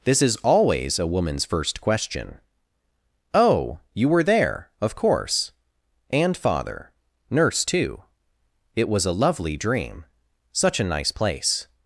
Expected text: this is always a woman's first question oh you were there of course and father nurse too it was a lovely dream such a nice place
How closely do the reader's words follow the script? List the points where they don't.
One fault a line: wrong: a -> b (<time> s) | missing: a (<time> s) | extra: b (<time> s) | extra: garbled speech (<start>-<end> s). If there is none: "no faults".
no faults